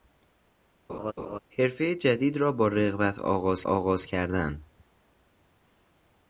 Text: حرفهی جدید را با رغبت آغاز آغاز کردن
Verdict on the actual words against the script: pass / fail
pass